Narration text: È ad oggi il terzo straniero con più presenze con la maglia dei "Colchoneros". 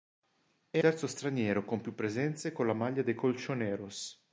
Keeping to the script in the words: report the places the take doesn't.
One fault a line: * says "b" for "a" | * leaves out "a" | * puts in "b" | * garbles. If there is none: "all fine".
* leaves out "ad oggi il"